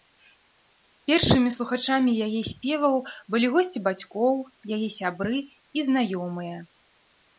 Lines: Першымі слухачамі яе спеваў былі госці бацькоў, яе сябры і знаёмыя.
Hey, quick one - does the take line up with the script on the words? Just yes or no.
yes